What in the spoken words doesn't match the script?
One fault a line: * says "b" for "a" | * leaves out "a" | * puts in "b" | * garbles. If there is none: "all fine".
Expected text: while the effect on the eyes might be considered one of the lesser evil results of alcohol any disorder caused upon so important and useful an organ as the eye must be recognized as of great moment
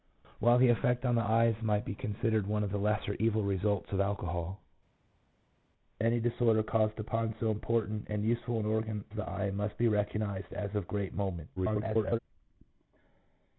* leaves out "as"
* garbles